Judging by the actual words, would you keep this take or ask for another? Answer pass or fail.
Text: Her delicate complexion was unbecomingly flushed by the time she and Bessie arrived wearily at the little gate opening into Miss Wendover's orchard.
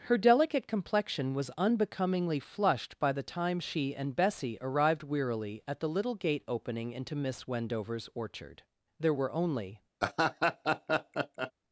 fail